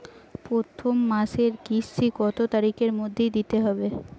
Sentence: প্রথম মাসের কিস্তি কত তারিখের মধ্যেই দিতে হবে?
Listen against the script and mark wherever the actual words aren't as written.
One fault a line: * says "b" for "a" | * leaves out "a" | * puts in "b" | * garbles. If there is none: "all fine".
all fine